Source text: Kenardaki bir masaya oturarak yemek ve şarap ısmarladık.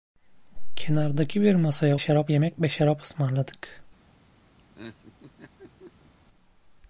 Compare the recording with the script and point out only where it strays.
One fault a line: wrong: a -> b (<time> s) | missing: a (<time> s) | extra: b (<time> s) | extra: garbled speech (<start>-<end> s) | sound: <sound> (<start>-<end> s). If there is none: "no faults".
wrong: oturarak -> şarap (2.0 s)
sound: laugh (4.6-6.1 s)